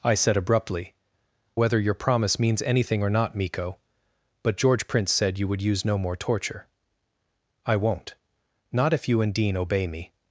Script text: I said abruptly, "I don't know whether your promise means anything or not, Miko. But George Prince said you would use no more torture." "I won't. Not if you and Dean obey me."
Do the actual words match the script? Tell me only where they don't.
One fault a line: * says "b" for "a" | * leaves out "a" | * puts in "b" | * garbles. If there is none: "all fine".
* leaves out "I don't know"